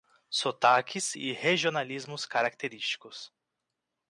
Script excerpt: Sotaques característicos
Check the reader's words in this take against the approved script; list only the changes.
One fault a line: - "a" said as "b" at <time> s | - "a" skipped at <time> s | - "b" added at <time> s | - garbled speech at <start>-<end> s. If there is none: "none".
- "e regionalismos" added at 1.1 s